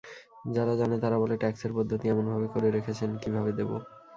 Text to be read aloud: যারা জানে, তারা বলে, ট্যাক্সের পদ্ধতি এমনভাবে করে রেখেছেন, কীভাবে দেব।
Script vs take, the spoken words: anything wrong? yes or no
no